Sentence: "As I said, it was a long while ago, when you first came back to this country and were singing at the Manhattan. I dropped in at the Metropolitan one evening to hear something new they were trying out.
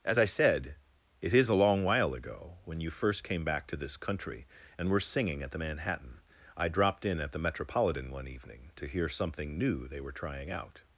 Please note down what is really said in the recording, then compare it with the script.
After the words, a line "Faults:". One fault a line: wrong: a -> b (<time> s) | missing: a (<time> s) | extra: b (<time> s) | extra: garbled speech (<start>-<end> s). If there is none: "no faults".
"As I said, it is a long while ago, when you first came back to this country and were singing at the Manhattan. I dropped in at the Metropolitan one evening to hear something new they were trying out.
Faults:
wrong: was -> is (1.3 s)